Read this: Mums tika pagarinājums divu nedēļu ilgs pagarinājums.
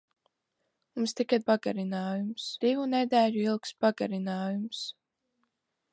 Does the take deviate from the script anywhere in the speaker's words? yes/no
no